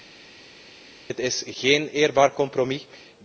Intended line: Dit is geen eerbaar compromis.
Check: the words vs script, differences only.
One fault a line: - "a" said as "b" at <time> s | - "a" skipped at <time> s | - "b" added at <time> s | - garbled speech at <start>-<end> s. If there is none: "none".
none